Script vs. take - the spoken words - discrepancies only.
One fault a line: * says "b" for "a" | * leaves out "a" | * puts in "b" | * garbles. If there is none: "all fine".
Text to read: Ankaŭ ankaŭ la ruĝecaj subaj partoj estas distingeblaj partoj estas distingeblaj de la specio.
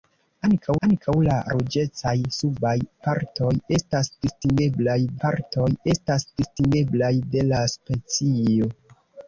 all fine